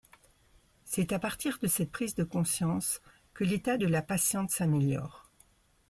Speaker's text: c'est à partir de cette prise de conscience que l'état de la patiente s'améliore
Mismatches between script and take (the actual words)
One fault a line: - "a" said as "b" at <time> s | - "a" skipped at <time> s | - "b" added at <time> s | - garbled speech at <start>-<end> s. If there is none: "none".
none